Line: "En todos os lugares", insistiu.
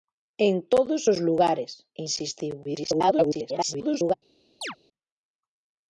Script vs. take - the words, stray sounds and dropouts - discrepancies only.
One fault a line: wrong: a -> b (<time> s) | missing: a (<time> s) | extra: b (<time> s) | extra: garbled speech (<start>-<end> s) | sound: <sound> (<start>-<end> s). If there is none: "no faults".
extra: garbled speech (2.6-4.1 s)
sound: chirp (4.6-4.8 s)